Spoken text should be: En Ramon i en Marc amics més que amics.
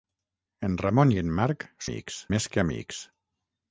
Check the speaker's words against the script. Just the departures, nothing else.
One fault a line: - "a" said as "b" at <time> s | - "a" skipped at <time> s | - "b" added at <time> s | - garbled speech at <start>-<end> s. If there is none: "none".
none